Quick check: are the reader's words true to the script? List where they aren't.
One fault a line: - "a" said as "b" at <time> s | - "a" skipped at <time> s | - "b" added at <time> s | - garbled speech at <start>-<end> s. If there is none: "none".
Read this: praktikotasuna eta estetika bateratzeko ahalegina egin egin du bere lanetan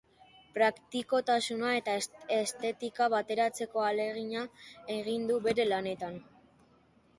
- "egin" skipped at 5.3 s